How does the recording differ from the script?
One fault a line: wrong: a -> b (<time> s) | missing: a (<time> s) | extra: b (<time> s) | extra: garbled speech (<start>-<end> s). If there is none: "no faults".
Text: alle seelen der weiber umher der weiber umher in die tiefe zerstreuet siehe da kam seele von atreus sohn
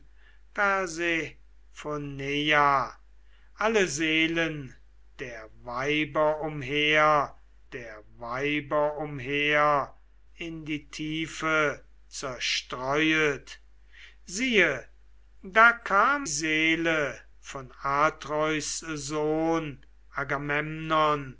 no faults